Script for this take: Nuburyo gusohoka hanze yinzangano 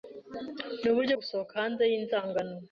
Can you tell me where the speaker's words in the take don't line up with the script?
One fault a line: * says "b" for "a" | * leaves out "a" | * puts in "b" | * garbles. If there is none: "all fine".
all fine